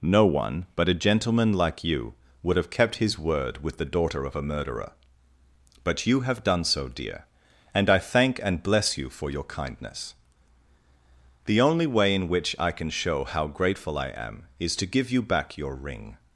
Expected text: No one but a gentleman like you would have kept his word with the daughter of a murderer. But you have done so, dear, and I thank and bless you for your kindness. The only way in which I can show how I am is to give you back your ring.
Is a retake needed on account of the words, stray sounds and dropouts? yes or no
yes